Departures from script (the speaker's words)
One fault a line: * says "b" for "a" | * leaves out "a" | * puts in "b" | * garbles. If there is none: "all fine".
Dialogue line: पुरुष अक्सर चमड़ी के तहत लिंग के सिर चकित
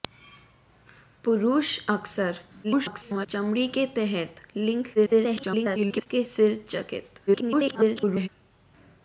* garbles
* garbles
* garbles